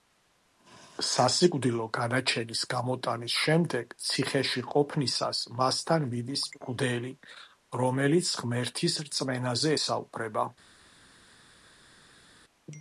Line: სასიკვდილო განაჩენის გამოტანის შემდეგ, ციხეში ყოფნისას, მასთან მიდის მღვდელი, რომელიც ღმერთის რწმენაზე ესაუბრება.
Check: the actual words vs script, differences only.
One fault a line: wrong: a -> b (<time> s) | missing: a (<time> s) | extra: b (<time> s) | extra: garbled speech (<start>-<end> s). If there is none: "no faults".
no faults